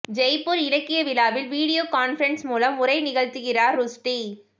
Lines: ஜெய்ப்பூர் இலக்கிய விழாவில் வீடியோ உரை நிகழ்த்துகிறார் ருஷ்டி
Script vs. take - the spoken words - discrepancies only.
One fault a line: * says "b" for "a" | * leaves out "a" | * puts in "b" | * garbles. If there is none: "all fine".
* puts in "கான்பரன்ஸ் மூலம்"